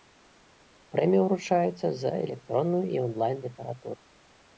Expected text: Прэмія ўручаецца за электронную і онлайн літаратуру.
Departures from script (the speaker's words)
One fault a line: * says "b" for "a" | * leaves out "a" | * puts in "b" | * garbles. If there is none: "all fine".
all fine